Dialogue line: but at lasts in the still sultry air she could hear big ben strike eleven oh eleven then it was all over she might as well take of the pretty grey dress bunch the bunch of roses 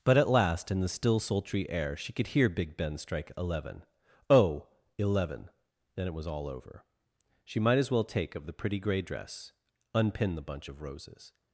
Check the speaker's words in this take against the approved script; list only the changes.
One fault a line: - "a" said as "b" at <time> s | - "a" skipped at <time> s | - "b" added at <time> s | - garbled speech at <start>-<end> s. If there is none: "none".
- "lasts" said as "last" at 0.3 s
- "bunch" said as "unpin" at 9.9 s